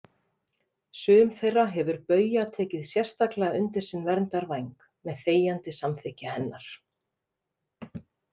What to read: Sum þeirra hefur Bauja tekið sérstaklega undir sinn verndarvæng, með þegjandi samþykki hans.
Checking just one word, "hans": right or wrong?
wrong